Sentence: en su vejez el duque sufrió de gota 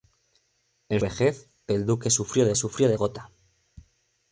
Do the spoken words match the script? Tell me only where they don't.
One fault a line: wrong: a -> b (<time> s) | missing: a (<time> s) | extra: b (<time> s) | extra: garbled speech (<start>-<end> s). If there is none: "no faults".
missing: su (1.0 s)
extra: sufrió de (2.5 s)